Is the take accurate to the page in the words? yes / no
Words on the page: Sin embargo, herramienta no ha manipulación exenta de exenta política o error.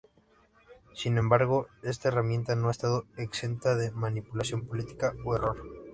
no